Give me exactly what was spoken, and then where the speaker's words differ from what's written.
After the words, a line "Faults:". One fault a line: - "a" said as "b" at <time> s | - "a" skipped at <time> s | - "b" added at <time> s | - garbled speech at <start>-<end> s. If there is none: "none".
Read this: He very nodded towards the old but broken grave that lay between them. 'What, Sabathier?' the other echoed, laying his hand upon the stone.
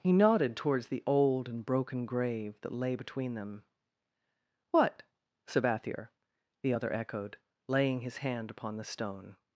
He nodded towards the old and broken grave that lay between them. 'What, Sabathier?' the other echoed, laying his hand upon the stone.
Faults:
- "very" skipped at 0.1 s
- "but" said as "and" at 1.5 s